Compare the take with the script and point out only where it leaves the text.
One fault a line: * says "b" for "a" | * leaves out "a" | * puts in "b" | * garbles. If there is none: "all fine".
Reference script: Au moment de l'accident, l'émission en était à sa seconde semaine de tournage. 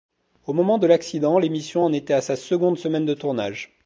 all fine